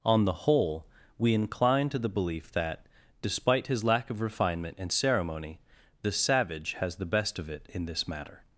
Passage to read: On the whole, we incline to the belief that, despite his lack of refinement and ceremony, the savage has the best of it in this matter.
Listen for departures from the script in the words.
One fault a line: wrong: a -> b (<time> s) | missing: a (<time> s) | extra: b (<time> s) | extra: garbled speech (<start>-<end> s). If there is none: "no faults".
no faults